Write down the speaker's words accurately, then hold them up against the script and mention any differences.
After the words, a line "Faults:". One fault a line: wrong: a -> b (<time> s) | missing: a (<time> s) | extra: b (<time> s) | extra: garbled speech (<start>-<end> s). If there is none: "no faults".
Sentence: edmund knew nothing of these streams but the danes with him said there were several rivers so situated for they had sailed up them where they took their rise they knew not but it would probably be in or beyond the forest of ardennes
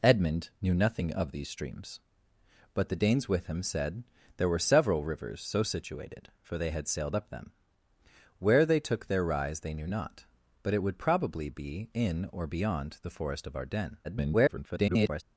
edmund knew nothing of these streams but the danes with him said there were several rivers so situated for they had sailed up them where they took their rise they knew not but it would probably be in or beyond the forest of ardennes [garbled]
Faults:
extra: garbled speech (14.0-15.2 s)